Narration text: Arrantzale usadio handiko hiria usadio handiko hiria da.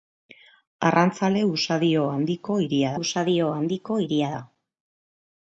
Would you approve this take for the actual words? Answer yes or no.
yes